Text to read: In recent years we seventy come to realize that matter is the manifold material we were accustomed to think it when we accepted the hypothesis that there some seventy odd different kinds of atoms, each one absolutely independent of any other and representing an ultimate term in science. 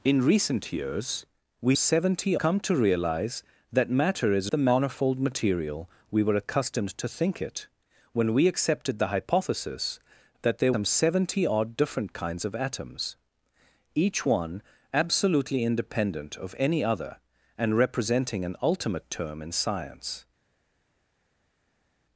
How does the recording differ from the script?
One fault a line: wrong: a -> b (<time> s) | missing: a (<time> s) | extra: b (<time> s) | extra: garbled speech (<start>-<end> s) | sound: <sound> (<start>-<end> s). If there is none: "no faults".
no faults